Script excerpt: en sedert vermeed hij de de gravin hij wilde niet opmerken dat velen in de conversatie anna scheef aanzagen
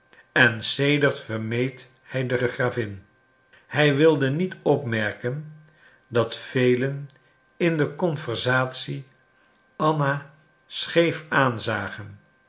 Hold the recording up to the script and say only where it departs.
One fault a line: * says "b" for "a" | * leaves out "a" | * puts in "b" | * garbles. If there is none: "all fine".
all fine